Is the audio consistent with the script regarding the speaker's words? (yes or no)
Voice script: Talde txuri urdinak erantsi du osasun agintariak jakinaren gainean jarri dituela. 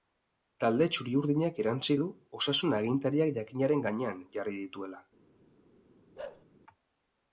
yes